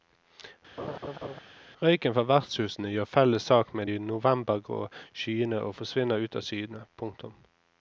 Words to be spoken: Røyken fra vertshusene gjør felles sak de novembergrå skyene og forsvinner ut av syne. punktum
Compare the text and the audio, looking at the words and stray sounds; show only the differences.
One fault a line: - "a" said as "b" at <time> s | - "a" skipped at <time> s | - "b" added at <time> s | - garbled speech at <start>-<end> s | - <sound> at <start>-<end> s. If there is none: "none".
- laugh at 0.8-1.4 s
- "med" added at 3.7 s